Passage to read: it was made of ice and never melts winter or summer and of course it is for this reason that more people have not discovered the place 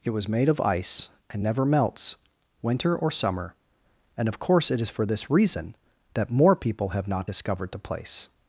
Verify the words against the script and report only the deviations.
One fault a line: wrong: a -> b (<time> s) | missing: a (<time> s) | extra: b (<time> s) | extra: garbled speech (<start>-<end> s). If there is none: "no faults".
no faults